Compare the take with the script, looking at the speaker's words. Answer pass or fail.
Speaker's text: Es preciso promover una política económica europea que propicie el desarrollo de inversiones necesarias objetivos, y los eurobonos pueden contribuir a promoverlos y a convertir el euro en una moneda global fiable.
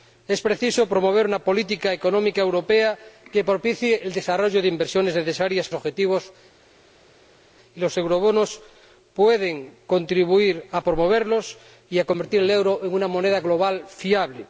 pass